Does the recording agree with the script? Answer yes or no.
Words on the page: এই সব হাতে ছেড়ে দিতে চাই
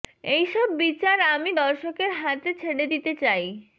no